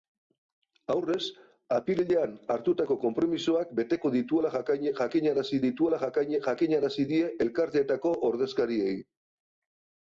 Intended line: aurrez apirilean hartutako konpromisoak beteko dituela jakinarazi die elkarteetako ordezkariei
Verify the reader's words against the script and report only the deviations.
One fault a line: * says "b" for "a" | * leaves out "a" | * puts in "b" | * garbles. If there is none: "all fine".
* puts in "dituela jakinarazi"